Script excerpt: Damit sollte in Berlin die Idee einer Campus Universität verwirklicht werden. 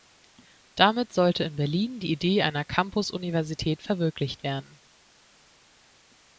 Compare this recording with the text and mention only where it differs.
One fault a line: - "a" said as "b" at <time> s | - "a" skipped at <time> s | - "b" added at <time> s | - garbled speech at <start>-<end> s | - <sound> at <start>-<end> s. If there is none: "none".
none